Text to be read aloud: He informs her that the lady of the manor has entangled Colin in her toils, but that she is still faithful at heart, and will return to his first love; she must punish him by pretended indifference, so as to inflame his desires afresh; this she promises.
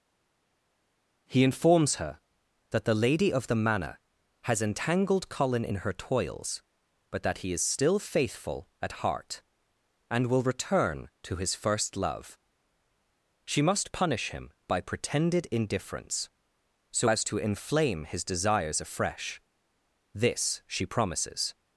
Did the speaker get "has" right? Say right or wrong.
right